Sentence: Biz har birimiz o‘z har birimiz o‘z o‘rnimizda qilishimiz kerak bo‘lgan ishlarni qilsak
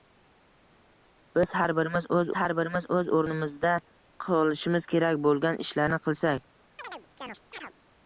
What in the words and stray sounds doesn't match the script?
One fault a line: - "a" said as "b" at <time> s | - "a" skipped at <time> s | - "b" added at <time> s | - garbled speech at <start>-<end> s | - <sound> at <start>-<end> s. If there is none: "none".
- chirp at 6.8-7.7 s